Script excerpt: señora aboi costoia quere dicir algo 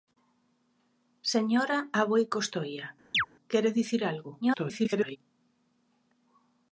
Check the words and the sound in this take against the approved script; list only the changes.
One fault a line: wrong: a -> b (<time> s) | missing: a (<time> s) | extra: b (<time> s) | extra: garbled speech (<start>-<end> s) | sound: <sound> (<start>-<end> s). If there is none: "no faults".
sound: chirp (3.1-3.3 s)
extra: garbled speech (4.4-5.2 s)